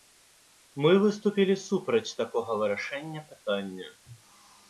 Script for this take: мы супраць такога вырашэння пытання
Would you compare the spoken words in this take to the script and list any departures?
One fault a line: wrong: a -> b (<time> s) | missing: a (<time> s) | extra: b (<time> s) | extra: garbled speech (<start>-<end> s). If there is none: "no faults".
extra: выступілі (1.0 s)